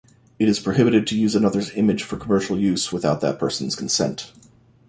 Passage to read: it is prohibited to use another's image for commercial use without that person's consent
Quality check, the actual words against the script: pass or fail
pass